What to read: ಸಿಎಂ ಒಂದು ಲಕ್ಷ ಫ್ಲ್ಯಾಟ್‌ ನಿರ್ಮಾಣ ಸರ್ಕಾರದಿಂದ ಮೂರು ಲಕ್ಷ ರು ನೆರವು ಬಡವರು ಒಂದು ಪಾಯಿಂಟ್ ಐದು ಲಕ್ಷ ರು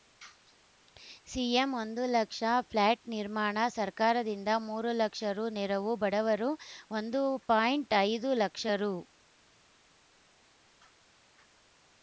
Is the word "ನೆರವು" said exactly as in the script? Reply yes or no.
yes